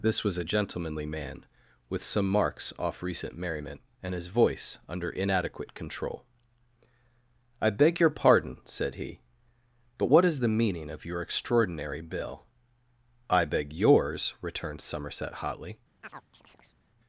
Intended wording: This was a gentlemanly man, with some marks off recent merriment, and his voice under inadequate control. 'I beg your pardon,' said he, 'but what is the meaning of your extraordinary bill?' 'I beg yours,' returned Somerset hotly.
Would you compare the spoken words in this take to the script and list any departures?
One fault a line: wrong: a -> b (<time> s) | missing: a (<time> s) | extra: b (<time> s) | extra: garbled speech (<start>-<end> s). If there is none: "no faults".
no faults